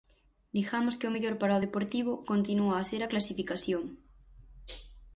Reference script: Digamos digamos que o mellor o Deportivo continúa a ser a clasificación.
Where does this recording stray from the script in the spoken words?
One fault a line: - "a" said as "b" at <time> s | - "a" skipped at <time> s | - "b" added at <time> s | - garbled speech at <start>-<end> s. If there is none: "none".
- "digamos" skipped at 1.0 s
- "para" added at 1.4 s